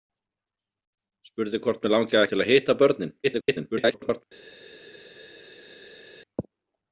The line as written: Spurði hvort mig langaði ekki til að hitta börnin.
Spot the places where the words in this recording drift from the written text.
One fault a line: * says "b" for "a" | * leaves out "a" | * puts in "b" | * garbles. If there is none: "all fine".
* leaves out "ekki"
* garbles